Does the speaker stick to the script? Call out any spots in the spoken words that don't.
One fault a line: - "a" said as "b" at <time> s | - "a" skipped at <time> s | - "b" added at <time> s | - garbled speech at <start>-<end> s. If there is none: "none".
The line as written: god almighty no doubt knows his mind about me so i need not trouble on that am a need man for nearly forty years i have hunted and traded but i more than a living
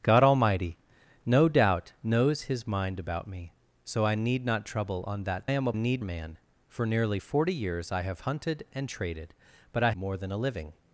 none